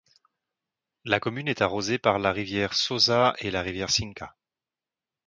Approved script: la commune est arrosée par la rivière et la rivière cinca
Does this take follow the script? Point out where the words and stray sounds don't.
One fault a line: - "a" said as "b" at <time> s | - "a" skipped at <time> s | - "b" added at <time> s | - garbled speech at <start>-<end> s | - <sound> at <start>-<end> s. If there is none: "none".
- "sosa" added at 2.7 s